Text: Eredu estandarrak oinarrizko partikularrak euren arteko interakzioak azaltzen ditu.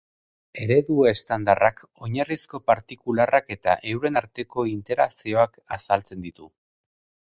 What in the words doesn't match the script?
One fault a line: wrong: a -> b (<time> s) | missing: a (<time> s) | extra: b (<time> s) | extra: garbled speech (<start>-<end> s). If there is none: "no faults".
extra: eta (3.5 s)